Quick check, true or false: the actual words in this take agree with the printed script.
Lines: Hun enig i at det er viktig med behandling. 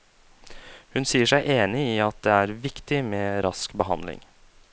false